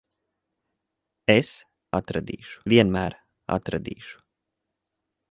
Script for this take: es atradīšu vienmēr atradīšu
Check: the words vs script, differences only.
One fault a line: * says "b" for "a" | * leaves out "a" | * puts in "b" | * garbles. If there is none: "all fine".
all fine